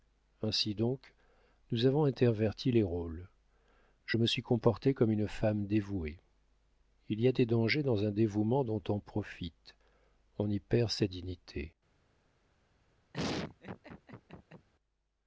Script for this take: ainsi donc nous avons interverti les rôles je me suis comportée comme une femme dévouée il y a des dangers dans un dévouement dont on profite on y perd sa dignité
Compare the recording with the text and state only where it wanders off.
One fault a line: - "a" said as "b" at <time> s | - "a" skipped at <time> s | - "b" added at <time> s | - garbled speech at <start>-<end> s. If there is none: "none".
none